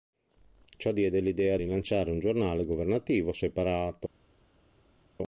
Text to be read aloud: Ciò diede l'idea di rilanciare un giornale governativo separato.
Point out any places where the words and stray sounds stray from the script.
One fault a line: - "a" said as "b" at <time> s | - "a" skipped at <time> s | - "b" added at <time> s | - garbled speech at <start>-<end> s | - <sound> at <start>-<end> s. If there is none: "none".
- "di" skipped at 1.6 s